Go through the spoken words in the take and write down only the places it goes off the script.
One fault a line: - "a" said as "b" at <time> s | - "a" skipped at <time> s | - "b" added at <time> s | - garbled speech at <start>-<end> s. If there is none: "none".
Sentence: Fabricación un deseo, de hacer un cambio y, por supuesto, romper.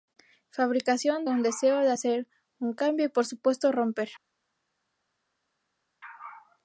none